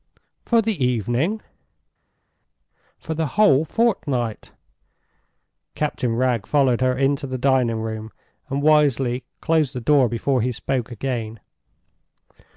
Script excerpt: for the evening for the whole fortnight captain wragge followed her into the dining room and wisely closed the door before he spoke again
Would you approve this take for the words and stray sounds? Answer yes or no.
yes